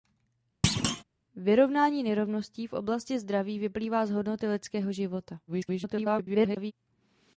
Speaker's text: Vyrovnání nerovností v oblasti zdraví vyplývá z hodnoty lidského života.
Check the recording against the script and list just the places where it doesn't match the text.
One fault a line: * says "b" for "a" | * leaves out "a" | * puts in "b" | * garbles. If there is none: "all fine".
* garbles